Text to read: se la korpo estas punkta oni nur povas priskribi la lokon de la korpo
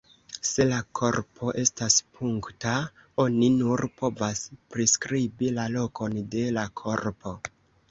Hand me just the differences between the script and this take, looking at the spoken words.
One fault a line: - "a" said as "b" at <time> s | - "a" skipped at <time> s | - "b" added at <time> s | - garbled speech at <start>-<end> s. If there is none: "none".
none